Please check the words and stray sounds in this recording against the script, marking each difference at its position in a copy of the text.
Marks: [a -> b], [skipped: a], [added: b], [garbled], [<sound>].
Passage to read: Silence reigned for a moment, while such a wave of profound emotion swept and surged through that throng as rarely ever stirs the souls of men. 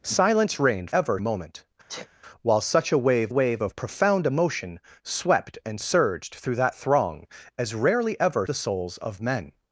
Silence reigned [for -> ever] a moment, [sniff] while such a wave [added: wave] of profound emotion swept and surged through that throng as rarely ever [skipped: stirs] the souls of men.